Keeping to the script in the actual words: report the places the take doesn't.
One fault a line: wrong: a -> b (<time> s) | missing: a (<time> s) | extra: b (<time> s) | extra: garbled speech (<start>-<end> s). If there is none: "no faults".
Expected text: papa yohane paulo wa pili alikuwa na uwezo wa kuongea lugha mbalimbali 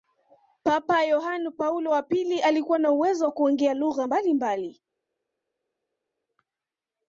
no faults